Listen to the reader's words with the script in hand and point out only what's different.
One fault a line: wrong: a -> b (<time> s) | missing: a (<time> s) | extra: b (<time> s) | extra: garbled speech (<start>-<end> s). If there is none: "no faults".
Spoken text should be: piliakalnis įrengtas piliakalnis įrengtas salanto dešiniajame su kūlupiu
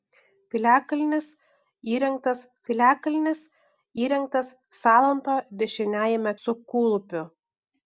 no faults